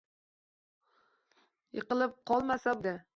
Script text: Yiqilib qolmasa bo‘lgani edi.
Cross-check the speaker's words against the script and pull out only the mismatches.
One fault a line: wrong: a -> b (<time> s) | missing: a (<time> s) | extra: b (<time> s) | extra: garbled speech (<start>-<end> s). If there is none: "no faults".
missing: bo‘lgani (2.8 s)